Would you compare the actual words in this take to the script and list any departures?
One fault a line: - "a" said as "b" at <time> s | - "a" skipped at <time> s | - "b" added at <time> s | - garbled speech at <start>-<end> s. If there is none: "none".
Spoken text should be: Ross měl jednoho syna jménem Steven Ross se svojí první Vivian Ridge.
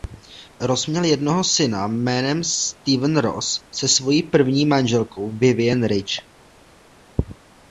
- "manželkou" added at 4.6 s